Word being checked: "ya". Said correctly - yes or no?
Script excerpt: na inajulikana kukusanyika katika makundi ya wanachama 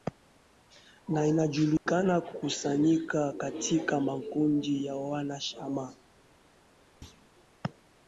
yes